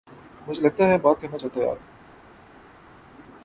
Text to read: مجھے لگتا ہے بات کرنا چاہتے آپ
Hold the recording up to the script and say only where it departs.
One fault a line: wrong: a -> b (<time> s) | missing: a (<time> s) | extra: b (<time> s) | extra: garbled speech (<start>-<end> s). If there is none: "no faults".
no faults